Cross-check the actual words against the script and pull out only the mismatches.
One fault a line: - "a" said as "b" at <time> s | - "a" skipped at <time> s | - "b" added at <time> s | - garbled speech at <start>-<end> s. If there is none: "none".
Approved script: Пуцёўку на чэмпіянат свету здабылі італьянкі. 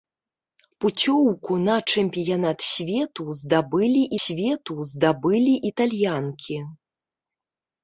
- "свету здабылі" added at 4.2 s